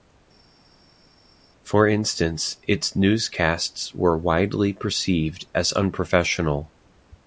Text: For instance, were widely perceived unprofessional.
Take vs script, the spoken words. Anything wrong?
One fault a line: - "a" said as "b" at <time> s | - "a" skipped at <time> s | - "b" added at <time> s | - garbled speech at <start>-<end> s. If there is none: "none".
- "its newscasts" added at 2.7 s
- "as" added at 5.5 s